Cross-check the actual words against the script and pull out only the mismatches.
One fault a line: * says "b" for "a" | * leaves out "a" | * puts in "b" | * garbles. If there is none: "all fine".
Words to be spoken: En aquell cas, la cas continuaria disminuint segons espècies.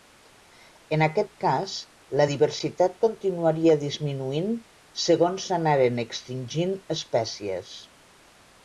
* says "aquest" for "aquell"
* says "diversitat" for "cas"
* puts in "s'anaren extingint"